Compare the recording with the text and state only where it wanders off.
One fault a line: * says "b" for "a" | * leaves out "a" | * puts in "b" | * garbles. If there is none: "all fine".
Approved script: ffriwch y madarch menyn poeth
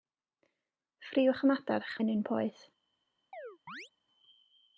all fine